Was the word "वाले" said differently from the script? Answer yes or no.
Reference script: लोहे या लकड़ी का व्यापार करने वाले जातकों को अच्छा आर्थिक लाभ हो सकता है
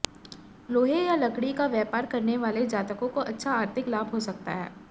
no